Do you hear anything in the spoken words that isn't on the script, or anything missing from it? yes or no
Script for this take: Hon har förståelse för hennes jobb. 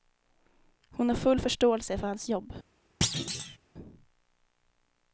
yes